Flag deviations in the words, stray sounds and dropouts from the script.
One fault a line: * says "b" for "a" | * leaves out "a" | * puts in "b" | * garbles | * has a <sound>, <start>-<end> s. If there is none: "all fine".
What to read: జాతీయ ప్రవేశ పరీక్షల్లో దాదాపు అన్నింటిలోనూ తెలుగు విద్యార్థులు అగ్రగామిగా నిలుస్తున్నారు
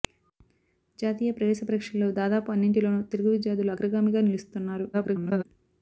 * garbles